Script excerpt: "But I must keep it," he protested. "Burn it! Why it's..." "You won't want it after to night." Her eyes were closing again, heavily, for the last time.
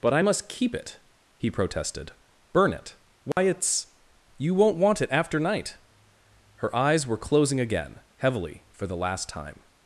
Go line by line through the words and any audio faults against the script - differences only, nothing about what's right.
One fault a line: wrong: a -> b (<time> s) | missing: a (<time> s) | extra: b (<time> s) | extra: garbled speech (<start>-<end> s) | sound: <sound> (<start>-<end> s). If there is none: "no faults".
sound: dropout (3.3-3.4 s)
missing: to (5.4 s)